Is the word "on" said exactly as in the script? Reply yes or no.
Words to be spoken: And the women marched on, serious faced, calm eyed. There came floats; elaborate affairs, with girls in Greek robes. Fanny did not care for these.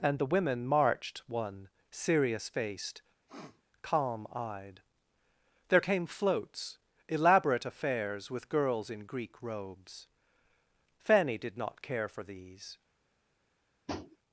no